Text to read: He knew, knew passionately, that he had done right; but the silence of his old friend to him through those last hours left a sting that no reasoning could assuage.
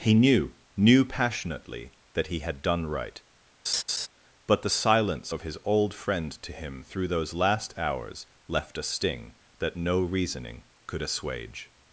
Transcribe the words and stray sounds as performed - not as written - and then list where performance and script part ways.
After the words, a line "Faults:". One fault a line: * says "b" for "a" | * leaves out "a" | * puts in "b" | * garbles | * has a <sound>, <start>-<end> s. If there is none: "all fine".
He knew, knew passionately, that he had done right; but the silence of his old friend to him through those last hours left a sting that no reasoning could assuage.
Faults:
* has a laugh, 3.7-4.1 s